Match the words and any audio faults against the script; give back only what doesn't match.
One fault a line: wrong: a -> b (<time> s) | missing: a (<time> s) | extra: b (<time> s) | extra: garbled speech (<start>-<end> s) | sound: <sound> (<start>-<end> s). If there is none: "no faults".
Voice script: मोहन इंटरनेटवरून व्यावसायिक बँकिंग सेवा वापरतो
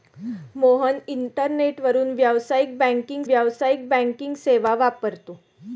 extra: व्यावसायिक बँकिंग (3.2 s)